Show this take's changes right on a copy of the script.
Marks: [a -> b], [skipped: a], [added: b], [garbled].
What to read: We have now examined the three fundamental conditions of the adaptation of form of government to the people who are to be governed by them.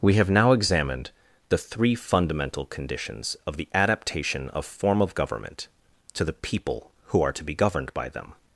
We have now examined the three fundamental conditions of the adaptation of form of government to the people who are to be governed by them.